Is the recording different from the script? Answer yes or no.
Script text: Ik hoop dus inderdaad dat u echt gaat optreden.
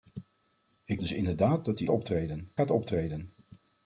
yes